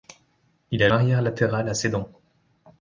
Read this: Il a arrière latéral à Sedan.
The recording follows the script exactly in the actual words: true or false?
true